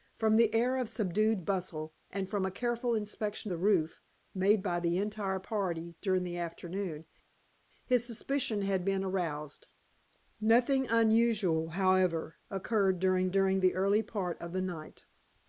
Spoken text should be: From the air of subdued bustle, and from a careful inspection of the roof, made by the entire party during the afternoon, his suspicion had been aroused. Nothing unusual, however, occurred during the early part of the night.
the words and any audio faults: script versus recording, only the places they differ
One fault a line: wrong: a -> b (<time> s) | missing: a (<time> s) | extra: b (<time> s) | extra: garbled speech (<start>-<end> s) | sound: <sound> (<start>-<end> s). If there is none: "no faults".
missing: of (3.5 s)
extra: during (13.3 s)